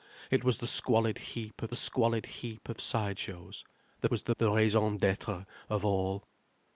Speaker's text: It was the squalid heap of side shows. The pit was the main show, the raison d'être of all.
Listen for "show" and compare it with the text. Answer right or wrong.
wrong